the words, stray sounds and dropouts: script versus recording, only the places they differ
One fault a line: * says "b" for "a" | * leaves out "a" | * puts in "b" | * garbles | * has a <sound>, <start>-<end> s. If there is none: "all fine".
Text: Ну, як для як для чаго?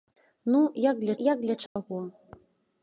* has a dropout, 1.7-1.8 s